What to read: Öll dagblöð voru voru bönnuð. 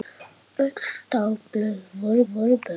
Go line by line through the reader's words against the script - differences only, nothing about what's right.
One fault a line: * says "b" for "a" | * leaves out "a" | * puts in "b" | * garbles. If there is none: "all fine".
all fine